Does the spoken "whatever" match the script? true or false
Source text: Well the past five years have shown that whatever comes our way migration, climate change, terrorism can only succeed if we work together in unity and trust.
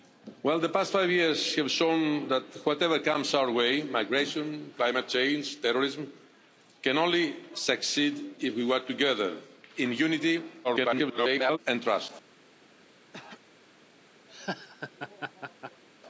true